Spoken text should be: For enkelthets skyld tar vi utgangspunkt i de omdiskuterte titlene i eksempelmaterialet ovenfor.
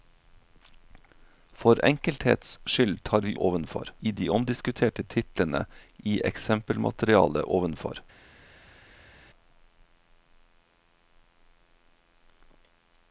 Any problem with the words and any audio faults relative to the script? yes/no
yes